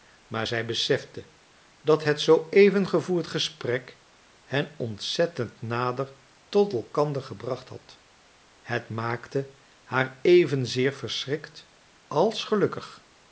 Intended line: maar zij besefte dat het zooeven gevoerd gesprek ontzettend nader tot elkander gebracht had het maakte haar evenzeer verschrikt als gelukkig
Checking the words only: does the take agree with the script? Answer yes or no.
no